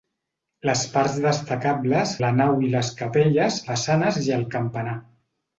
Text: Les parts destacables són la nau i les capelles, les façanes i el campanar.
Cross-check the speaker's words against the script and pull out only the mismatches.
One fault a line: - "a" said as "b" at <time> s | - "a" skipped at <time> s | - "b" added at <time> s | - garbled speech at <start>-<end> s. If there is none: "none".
- "són" skipped at 2.1 s
- "les" skipped at 3.6 s